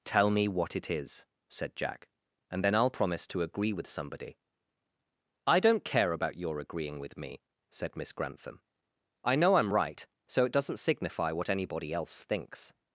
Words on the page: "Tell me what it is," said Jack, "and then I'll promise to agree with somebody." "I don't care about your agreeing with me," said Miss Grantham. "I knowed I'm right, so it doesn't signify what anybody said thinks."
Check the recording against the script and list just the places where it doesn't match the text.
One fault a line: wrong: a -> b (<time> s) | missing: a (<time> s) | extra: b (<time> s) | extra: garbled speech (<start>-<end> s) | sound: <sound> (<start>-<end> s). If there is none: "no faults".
wrong: knowed -> know (9.3 s)
wrong: said -> else (11.9 s)